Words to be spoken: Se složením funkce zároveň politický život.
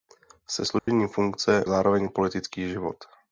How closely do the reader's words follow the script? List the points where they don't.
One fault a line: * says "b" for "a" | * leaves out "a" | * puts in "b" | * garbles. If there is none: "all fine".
all fine